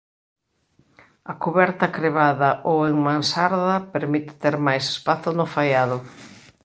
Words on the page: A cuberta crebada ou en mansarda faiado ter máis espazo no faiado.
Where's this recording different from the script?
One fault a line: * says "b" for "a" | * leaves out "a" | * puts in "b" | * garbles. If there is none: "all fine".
* says "permite" for "faiado"